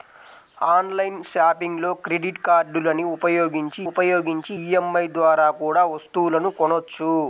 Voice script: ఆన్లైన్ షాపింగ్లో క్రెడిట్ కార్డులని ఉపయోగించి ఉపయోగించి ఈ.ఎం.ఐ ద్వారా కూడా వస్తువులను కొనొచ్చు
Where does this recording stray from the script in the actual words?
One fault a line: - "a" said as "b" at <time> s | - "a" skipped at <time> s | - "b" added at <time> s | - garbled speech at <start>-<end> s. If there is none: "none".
none